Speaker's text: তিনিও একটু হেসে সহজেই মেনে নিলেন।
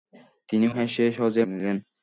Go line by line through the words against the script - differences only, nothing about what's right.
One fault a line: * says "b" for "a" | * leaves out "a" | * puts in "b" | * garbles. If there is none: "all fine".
* leaves out "একটু"
* leaves out "মেনে"